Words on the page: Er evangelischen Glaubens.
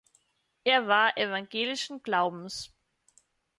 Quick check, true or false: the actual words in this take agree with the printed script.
false